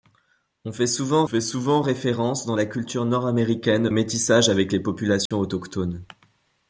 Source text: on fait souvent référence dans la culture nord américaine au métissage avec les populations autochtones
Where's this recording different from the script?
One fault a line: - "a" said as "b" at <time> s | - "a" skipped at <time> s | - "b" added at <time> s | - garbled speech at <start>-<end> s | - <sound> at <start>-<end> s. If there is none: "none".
- "fait souvent" added at 1.2 s
- "au" skipped at 3.9 s
- dropout at 5.3-5.3 s